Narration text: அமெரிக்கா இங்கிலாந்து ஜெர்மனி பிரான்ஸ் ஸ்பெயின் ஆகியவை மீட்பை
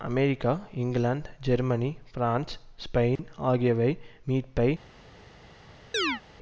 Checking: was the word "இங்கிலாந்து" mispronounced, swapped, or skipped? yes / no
no